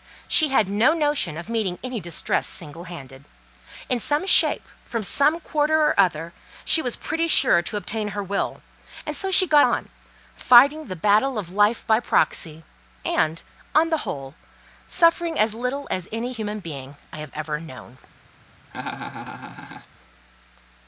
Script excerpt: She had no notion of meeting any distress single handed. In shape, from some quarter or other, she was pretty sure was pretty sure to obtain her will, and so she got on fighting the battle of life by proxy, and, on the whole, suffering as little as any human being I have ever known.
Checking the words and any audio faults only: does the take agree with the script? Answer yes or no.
no